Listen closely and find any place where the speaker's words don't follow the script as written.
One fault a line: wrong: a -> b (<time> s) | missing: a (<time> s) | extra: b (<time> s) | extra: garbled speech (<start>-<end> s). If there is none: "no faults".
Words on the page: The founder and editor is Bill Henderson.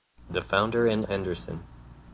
missing: editor is Bill (1.1 s)